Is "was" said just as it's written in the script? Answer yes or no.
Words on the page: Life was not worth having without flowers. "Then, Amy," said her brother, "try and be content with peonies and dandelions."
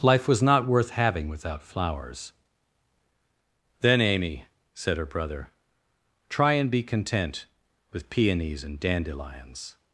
yes